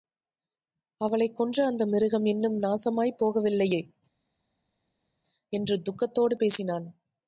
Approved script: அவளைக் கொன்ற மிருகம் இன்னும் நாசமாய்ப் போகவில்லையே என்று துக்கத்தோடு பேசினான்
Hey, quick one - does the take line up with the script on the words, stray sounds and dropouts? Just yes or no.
no